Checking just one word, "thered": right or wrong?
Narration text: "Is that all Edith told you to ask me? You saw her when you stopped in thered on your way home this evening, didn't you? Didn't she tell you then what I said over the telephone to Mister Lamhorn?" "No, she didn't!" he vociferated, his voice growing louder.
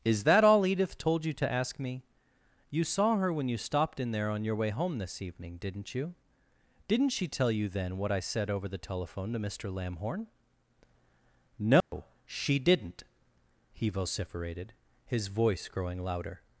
wrong